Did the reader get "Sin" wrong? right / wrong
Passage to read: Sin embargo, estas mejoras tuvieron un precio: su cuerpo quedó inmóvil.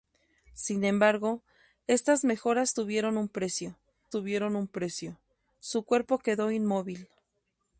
right